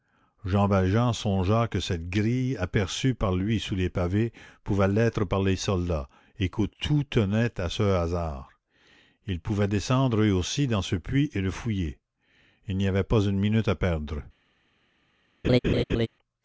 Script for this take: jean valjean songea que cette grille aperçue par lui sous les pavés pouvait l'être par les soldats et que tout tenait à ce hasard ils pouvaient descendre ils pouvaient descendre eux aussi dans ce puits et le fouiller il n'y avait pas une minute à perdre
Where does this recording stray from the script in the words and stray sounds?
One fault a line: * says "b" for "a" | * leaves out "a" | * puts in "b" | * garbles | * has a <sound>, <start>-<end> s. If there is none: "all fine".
* leaves out "ils pouvaient descendre"
* has a laugh, 15.4-16.1 s